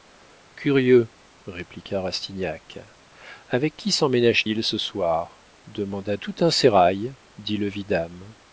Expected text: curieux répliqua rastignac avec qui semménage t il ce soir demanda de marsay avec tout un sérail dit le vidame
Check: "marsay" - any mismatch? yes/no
yes